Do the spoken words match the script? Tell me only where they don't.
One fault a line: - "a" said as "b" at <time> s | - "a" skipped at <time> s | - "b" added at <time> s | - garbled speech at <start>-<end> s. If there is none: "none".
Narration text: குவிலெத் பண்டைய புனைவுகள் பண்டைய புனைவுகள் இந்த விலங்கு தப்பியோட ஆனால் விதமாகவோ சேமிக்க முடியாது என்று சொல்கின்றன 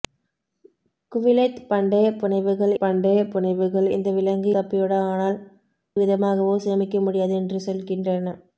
none